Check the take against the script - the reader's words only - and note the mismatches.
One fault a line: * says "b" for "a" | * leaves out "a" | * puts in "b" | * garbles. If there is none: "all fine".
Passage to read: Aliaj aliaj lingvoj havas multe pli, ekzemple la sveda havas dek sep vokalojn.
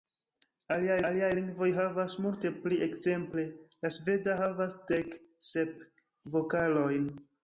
all fine